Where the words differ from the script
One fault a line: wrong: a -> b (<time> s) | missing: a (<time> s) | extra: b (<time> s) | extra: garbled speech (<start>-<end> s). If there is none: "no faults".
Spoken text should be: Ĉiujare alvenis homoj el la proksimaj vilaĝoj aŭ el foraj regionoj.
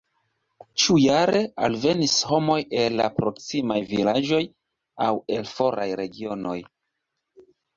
no faults